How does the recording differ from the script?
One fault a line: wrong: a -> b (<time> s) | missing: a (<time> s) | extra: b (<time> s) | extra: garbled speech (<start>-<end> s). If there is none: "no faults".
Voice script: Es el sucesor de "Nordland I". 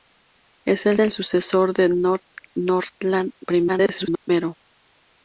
extra: el (1.0 s)
extra: garbled speech (3.7-4.3 s)